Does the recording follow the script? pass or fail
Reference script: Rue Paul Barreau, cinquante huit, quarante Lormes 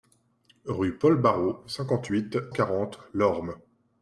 pass